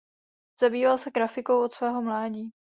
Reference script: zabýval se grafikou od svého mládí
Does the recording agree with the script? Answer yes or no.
yes